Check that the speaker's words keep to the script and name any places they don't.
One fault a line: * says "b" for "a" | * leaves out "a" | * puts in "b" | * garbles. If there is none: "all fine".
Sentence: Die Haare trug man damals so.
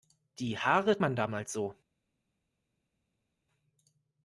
* leaves out "trug"